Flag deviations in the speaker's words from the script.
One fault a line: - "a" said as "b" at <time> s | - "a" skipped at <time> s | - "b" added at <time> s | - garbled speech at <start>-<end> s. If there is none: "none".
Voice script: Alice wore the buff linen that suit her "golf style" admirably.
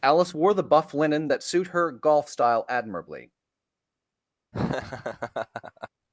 none